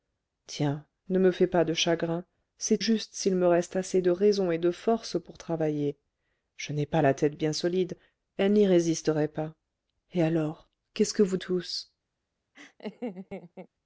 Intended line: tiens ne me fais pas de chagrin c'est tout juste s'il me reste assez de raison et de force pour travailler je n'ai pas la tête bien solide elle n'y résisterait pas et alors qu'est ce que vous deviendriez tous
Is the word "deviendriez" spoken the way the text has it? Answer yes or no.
no